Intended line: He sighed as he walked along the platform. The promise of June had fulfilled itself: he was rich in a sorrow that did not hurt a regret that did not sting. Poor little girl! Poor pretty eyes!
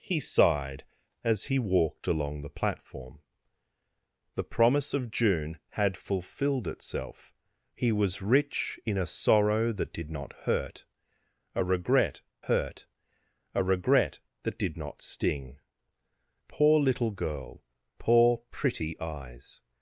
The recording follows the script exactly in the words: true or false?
false